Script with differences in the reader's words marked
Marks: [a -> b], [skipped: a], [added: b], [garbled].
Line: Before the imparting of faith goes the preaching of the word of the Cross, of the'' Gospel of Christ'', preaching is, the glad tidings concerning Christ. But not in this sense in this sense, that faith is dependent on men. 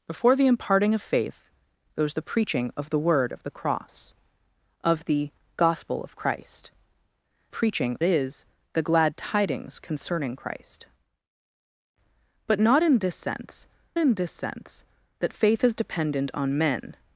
Before the imparting of faith goes the preaching of the word of the Cross, of the'' Gospel of Christ'', preaching is, the glad tidings concerning Christ. But not in this sense in this sense, that faith is dependent on men.